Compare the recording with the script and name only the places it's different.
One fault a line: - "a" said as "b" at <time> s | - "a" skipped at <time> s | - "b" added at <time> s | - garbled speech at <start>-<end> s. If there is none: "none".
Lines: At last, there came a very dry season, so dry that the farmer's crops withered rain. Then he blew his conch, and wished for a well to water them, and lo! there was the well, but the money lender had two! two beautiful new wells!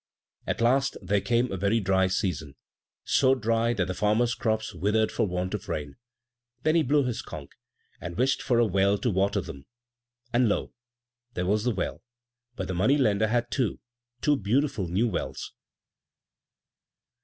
- "for want of" added at 5.1 s